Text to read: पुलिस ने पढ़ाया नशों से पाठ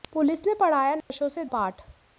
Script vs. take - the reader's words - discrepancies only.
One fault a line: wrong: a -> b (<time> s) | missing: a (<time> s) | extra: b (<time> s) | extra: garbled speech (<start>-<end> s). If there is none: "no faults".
no faults